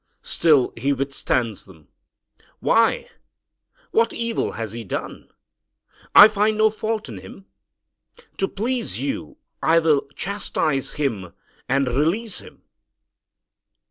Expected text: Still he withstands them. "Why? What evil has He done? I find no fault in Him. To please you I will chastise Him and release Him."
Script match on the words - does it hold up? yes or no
yes